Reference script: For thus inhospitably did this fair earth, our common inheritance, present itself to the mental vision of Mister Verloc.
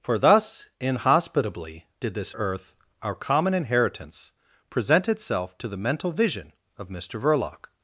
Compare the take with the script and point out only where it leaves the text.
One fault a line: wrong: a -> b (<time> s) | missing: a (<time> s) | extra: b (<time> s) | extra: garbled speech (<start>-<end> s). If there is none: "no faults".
missing: fair (2.3 s)